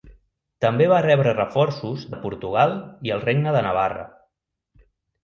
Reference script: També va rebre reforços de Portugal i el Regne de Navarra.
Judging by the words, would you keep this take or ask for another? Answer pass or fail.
pass